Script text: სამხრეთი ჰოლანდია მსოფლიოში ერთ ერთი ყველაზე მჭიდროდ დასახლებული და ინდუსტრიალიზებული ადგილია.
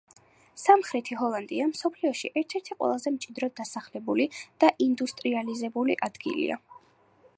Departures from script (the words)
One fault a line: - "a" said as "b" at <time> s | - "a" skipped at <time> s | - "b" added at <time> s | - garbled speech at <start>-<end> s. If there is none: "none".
none